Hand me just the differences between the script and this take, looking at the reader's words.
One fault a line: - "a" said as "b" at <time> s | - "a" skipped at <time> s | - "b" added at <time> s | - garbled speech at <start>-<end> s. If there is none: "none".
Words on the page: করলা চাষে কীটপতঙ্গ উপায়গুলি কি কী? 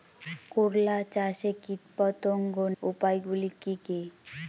none